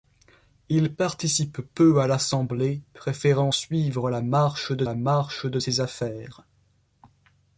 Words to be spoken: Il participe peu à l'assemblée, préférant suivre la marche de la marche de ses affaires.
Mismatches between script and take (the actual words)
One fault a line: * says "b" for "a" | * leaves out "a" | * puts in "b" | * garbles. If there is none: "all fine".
all fine